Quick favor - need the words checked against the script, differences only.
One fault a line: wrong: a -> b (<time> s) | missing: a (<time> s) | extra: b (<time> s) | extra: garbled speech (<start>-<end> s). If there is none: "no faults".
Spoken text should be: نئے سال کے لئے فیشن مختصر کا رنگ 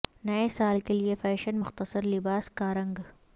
extra: لباس (2.0 s)